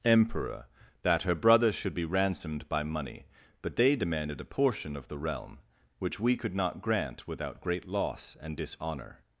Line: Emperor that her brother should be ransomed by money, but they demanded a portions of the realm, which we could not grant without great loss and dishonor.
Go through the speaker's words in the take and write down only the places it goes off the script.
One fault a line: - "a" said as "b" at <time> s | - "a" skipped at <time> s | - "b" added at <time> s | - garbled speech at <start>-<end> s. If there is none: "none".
- "portions" said as "portion" at 4.5 s